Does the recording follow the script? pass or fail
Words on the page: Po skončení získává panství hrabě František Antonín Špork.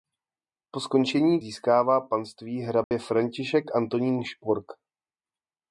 pass